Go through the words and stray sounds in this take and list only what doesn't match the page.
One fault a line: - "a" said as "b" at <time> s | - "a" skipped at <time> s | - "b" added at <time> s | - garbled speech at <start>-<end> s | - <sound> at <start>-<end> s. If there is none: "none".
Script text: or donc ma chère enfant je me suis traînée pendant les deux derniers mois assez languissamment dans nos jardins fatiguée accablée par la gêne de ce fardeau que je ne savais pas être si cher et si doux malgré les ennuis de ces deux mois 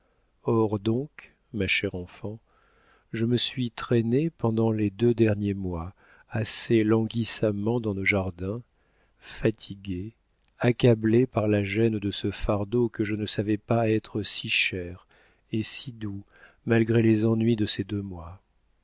none